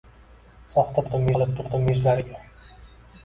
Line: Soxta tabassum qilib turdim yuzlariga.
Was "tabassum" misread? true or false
true